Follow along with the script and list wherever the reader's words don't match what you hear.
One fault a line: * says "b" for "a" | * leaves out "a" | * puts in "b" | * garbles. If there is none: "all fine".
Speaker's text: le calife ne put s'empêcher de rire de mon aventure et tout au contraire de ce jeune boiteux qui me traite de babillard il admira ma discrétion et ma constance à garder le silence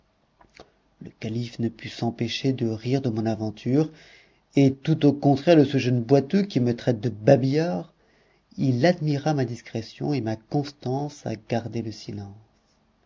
all fine